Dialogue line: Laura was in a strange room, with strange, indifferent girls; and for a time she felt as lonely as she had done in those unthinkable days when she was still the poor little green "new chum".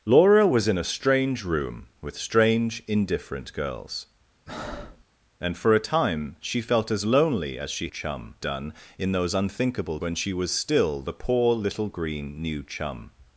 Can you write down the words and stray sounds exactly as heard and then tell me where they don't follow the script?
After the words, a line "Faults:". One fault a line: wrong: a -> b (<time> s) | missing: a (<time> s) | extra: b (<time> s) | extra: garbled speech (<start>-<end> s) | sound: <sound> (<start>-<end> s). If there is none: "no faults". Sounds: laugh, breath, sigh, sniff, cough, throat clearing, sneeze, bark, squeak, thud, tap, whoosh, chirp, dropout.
Laura was in a strange room, with strange, indifferent girls; and for a time she felt as lonely as she chum done in those unthinkable when she was still the poor little green "new chum".
Faults:
sound: breath (4.5-5.0 s)
wrong: had -> chum (7.9 s)
missing: days (10.0 s)